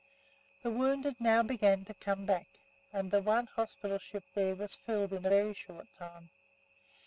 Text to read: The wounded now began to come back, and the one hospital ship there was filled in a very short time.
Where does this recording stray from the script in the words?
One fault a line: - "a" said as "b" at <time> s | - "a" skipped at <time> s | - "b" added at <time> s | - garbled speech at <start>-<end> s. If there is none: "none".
none